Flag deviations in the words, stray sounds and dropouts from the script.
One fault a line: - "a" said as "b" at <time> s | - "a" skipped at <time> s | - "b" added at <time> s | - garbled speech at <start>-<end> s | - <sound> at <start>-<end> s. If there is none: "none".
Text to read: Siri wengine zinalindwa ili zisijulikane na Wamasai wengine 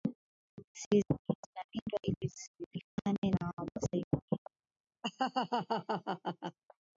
- dropout at 2.9-3.0 s
- laugh at 5.0-6.6 s